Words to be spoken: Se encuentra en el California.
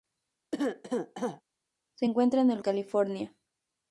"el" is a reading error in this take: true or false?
false